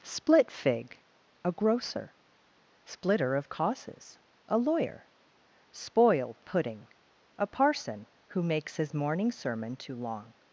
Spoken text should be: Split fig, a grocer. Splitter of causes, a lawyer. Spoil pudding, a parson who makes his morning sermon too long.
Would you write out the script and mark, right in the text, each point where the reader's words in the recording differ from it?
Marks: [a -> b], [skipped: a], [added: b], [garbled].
Split fig, a grocer. Splitter of causes, a lawyer. Spoil pudding, a parson who makes his morning sermon too long.